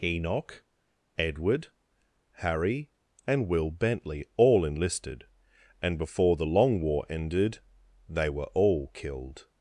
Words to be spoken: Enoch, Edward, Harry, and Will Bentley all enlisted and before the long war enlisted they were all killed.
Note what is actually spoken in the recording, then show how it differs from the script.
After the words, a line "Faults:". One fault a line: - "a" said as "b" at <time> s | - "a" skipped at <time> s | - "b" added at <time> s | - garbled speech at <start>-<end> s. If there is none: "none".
Enoch, Edward, Harry, and Will Bentley all enlisted and before the long war ended they were all killed.
Faults:
- "enlisted" said as "ended" at 7.1 s